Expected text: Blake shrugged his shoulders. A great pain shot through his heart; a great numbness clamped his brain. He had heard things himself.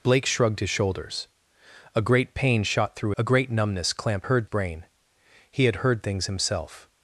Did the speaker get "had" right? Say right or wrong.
right